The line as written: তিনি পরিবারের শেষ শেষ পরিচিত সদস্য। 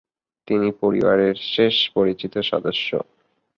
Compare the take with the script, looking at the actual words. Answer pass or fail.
fail